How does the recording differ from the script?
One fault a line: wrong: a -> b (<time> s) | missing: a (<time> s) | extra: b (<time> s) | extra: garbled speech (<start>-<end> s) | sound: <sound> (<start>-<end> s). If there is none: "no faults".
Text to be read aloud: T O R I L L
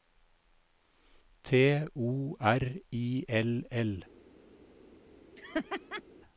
sound: laugh (5.4-6.0 s)